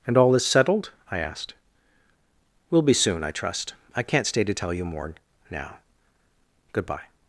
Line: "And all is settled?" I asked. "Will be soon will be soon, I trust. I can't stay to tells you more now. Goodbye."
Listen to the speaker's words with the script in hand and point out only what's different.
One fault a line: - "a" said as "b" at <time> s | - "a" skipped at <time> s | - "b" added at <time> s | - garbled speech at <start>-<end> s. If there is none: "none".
- "will be soon" skipped at 3.2 s
- "tells" said as "tell" at 4.5 s